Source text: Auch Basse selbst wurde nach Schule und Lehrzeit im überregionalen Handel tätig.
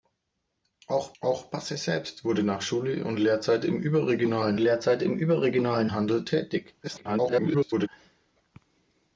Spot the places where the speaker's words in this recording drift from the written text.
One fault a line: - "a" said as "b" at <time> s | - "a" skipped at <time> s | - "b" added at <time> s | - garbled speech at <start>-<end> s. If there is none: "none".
- "auch" added at 1.2 s
- "Lehrzeit im überregionalen" added at 4.6 s
- garbled speech at 6.8-7.9 s